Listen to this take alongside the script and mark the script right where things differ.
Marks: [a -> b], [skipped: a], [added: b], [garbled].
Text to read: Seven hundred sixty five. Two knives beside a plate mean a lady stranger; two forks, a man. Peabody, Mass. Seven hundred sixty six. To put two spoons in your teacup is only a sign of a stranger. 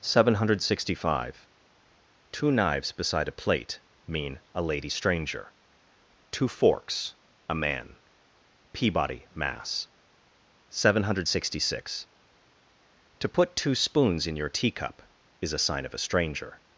Seven hundred sixty five. Two knives beside a plate mean a lady stranger; two forks, a man. Peabody, Mass. Seven hundred sixty six. To put two spoons in your teacup is [skipped: only] a sign of a stranger.